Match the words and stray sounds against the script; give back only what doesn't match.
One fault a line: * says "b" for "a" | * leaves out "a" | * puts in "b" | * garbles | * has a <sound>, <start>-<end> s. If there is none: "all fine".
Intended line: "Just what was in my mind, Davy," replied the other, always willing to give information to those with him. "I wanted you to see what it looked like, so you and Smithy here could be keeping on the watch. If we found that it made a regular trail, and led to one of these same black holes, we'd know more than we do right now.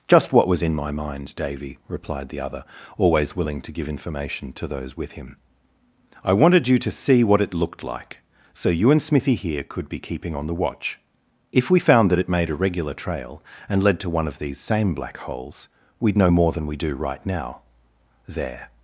* puts in "There"